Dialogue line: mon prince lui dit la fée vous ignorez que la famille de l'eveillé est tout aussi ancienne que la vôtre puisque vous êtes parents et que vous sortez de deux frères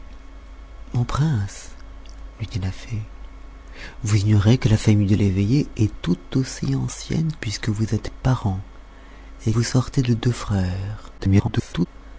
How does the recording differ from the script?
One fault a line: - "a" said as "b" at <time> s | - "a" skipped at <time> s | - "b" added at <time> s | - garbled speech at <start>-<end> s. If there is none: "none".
- "que la vôtre" skipped at 7.3 s
- "que" skipped at 9.5 s
- garbled speech at 11.2-11.9 s